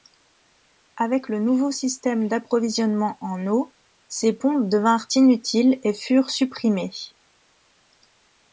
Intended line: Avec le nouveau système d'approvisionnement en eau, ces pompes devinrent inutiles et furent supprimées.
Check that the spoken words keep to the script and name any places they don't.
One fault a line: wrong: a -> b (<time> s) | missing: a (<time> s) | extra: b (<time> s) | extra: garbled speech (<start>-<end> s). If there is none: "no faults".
no faults